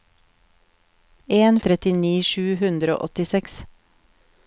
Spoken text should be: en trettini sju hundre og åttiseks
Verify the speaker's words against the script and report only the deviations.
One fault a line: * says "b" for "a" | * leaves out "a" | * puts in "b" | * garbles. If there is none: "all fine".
all fine